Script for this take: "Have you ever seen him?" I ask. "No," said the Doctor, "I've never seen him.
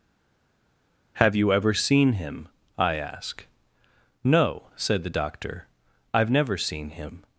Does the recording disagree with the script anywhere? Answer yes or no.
no